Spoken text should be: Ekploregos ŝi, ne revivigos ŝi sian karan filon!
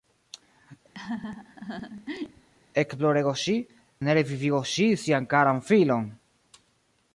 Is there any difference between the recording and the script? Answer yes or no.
no